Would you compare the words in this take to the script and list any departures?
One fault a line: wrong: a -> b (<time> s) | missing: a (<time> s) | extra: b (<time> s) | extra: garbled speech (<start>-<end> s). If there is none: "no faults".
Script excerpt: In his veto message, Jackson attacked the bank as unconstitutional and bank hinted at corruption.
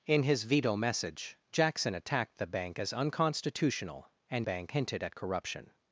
no faults